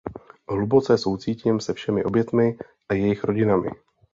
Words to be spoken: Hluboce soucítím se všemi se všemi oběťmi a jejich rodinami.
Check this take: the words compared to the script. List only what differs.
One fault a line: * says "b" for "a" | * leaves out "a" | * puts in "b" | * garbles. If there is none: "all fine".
* leaves out "se všemi"